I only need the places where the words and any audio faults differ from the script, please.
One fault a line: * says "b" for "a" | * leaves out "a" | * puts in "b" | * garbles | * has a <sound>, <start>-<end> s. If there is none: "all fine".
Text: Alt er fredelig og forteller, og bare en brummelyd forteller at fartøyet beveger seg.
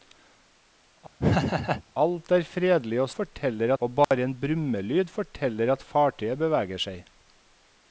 * has a laugh, 1.2-1.8 s
* has a dropout, 4.0-4.1 s